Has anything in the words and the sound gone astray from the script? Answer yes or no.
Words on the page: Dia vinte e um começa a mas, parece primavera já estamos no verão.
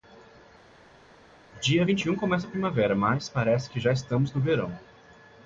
yes